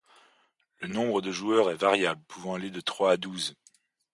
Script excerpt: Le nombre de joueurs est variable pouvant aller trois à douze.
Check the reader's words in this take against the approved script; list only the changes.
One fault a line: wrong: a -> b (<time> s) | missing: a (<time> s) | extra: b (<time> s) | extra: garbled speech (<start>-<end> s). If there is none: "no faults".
extra: de (2.7 s)